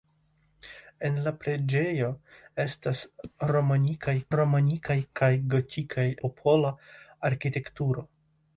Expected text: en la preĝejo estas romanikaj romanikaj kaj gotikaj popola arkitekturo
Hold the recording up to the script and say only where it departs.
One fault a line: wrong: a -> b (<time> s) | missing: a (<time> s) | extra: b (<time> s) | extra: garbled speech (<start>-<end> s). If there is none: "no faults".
no faults